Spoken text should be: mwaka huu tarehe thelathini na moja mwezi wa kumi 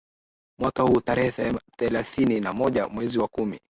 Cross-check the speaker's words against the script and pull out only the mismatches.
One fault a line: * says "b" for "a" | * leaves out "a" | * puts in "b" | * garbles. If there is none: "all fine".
all fine